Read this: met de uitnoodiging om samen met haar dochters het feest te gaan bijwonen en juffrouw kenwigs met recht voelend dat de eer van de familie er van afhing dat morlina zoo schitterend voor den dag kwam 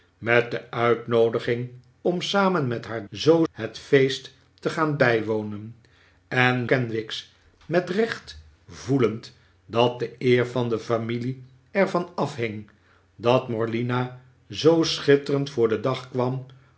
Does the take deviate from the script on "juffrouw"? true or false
true